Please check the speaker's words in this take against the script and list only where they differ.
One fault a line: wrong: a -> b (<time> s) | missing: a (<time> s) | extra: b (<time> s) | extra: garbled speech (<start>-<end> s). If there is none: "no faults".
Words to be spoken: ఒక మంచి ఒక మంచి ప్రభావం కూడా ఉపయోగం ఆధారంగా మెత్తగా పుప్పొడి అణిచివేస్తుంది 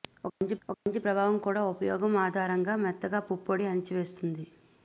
no faults